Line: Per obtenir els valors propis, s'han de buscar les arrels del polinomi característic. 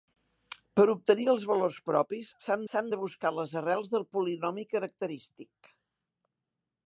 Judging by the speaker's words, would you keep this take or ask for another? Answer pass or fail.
fail